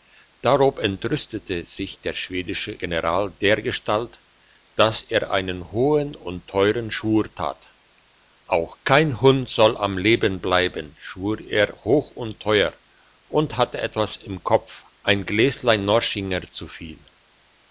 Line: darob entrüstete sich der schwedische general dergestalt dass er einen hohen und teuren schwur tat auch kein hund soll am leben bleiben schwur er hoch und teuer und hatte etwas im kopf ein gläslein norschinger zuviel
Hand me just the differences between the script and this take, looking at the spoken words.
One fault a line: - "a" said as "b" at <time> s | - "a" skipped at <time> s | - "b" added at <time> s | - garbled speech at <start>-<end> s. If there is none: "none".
none